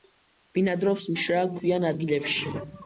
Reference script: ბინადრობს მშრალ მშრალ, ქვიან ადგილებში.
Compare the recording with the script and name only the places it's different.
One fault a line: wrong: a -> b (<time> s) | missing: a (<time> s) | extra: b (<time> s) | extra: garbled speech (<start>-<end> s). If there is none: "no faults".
missing: მშრალ (1.5 s)